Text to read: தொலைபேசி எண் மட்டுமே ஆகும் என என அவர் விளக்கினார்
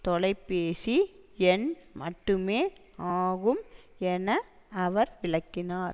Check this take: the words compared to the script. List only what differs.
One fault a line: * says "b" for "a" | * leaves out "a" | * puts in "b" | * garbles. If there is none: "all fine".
* leaves out "என"